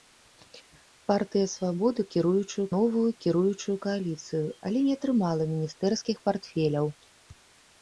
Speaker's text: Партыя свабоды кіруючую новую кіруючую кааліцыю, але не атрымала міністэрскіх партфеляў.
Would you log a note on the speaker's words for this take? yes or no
no